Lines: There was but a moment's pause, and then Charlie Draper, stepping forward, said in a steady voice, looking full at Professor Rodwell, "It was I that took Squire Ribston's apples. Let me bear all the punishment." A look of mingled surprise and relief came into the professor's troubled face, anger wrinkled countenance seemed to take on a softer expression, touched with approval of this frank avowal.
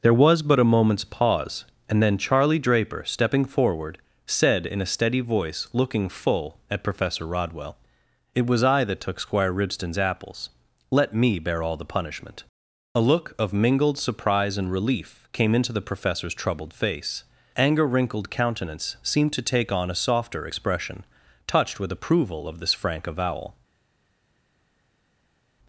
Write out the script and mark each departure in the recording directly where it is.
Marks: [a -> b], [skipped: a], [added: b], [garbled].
There was but a moment's pause, and then Charlie Draper, stepping forward, said in a steady voice, looking full at Professor Rodwell, "It was I that took Squire Ribston's apples. Let me bear all the punishment." A look of mingled surprise and relief came into the professor's troubled face, anger wrinkled countenance seemed to take on a softer expression, touched with approval of this frank avowal.